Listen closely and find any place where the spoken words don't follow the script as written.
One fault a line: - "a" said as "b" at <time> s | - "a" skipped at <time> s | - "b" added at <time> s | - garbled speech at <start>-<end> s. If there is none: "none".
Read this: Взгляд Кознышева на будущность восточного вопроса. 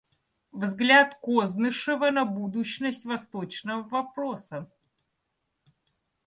none